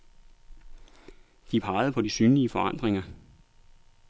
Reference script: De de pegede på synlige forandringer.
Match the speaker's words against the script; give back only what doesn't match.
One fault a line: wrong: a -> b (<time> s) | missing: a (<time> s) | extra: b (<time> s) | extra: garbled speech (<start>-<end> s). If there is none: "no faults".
missing: de (1.6 s)
extra: de (2.0 s)